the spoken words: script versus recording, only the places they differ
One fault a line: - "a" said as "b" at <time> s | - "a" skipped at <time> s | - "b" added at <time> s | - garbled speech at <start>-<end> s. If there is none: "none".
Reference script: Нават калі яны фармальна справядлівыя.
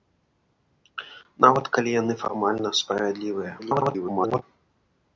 - garbled speech at 3.6-4.4 s